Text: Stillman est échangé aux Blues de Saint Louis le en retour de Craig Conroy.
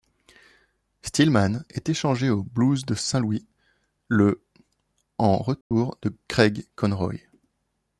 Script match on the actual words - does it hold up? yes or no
yes